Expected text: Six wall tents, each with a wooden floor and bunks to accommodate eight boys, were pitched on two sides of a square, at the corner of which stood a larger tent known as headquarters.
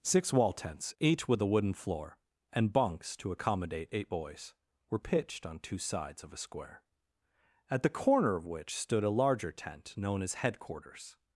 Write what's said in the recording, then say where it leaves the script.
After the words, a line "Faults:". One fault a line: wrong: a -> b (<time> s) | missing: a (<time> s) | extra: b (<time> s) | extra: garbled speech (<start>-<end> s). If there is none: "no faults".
Six wall tents, each with a wooden floor and bunks to accommodate eight boys, were pitched on two sides of a square, at the corner of which stood a larger tent known as headquarters.
Faults:
no faults